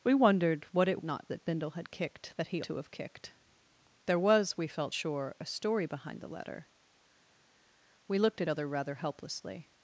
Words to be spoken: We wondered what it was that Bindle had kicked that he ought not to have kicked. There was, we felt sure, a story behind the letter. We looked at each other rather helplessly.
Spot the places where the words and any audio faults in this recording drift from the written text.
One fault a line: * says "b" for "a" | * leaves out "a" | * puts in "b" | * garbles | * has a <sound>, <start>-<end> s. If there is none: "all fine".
* says "not" for "was"
* leaves out "ought not"
* leaves out "each"